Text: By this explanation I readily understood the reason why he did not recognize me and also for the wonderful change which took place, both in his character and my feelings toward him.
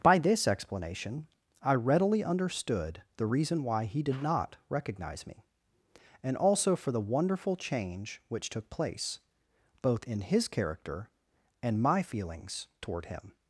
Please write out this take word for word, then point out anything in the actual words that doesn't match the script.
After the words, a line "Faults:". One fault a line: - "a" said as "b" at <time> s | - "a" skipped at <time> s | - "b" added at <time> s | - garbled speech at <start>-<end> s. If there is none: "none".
By this explanation I readily understood the reason why he did not recognize me and also for the wonderful change which took place, both in his character and my feelings toward him.
Faults:
none